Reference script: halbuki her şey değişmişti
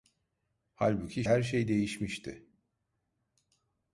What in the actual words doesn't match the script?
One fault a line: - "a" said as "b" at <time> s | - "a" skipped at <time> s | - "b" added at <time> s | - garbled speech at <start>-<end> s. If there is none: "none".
none